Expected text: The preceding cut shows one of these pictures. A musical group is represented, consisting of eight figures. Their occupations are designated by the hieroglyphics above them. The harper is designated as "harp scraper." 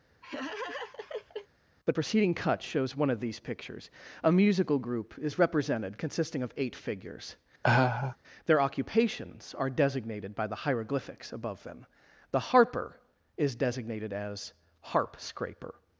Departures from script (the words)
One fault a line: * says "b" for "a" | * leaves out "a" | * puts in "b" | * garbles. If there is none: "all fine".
all fine